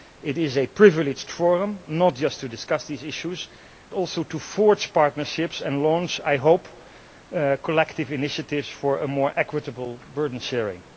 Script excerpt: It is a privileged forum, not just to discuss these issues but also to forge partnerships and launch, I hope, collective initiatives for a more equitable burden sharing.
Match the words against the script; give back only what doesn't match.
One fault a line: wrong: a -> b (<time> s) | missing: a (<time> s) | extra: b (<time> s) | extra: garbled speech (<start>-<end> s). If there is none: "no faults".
missing: but (3.5 s)